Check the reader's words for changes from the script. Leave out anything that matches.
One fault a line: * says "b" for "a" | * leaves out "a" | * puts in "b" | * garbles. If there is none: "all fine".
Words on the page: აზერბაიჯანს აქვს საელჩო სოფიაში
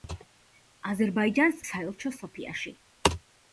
* leaves out "აქვს"